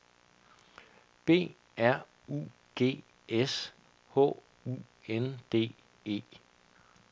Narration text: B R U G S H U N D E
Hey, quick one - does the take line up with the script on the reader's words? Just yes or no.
yes